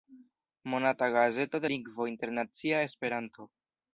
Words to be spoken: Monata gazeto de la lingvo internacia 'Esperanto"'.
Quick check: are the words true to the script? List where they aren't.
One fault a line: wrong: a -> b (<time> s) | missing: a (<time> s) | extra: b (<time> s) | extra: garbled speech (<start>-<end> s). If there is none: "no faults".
missing: la (1.7 s)